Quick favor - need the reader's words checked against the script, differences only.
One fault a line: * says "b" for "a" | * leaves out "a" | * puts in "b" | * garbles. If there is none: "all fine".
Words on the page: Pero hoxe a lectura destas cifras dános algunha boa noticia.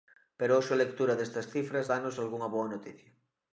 all fine